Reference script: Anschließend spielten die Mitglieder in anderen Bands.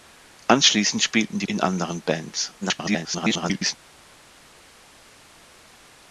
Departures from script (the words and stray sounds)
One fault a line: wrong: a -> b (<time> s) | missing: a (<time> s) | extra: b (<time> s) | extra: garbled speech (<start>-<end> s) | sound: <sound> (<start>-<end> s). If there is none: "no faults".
missing: Mitglieder (1.5 s)
extra: garbled speech (2.6-3.8 s)